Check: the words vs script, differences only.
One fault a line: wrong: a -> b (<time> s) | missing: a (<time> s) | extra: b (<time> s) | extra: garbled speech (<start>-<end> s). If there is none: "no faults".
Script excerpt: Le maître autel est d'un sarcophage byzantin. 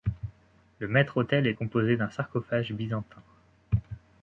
extra: composé (1.5 s)